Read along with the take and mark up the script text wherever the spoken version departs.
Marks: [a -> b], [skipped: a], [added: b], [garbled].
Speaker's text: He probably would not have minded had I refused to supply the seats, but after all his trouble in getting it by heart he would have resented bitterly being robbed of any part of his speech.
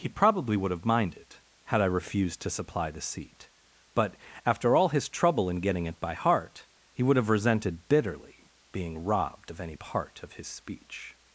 He probably would [skipped: not] have minded had I refused to supply the [seats, -> seat] but after all his trouble in getting it by heart he would have resented bitterly being robbed of any part of his speech.